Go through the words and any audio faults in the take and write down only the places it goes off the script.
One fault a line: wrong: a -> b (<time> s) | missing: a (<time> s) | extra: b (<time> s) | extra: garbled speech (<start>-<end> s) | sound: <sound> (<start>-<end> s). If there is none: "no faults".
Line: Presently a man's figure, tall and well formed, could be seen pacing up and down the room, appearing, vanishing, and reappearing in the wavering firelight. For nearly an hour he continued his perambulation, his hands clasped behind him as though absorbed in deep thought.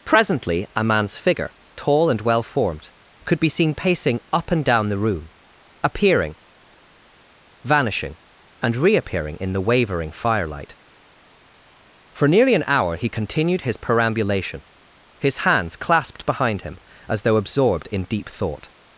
no faults